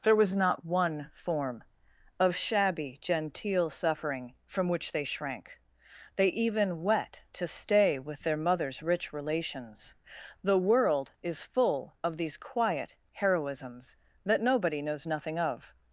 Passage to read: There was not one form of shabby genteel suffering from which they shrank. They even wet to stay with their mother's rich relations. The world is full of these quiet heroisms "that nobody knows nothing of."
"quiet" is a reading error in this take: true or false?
false